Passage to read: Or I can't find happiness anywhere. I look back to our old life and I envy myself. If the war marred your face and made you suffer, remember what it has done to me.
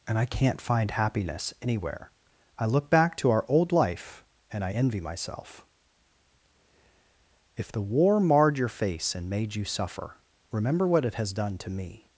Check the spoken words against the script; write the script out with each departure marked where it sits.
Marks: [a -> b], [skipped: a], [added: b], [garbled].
[Or -> And] I can't find happiness anywhere. I look back to our old life and I envy myself. If the war marred your face and made you suffer, remember what it has done to me.